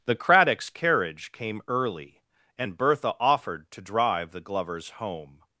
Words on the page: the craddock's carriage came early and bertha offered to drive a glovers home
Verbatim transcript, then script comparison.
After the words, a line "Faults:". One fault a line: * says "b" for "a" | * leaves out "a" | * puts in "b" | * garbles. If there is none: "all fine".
the craddock's carriage came early and bertha offered to drive the glovers home
Faults:
* says "the" for "a"